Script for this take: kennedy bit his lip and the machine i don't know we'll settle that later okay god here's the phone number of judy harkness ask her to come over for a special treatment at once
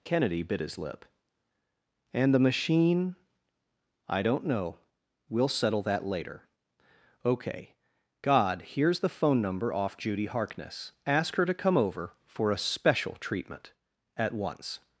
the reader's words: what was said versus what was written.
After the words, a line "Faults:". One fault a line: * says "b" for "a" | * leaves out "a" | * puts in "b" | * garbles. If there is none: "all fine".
kennedy bit his lip and the machine i don't know we'll settle that later okay god here's the phone number off judy harkness ask her to come over for a special treatment at once
Faults:
* says "off" for "of"